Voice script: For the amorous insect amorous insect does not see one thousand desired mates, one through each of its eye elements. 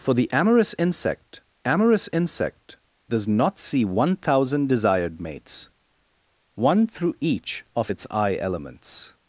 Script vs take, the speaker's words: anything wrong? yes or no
no